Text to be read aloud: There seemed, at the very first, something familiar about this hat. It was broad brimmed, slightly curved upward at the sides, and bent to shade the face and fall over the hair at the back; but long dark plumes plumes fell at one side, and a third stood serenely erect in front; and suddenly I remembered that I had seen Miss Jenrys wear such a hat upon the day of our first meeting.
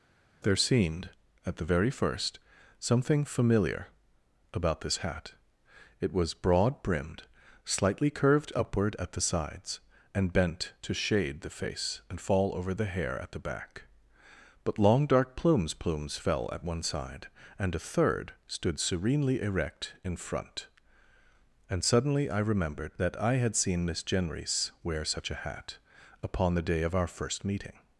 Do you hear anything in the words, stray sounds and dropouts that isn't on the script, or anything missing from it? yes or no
no